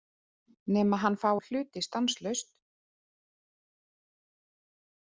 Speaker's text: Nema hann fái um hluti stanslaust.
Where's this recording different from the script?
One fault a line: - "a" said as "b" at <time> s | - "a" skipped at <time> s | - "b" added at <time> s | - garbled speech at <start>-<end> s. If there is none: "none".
none